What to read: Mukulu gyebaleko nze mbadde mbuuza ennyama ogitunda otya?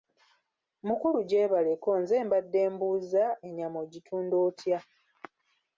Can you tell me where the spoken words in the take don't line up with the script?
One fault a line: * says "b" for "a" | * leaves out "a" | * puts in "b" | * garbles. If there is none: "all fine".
all fine